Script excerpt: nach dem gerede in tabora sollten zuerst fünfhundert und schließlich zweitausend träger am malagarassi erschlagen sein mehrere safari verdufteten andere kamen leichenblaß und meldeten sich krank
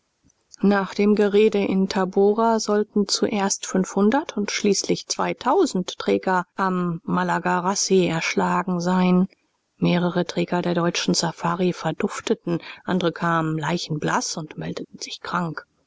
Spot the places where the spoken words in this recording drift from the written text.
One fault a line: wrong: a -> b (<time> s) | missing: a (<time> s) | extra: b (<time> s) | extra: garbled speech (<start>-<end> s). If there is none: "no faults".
extra: träger der deutschen (10.2 s)